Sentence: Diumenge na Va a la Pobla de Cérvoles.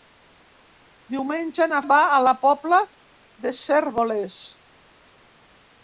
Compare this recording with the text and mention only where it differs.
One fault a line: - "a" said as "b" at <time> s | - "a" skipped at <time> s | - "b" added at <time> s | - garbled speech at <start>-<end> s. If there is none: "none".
none